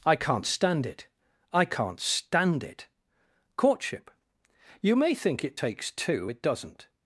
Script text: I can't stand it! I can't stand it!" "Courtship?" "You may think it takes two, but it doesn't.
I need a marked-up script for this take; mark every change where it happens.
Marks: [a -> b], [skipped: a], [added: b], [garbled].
I can't stand it! I can't stand it!" "Courtship?" "You may think it takes two, [skipped: but] it doesn't.